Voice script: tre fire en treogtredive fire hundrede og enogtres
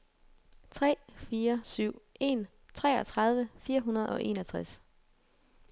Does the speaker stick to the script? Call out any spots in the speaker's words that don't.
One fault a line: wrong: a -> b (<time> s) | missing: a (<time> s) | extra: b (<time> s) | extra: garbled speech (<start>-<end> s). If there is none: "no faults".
extra: syv (1.6 s)